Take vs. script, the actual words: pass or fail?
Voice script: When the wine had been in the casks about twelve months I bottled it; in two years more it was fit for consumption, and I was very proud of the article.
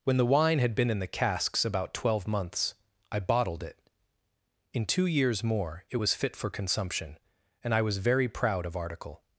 fail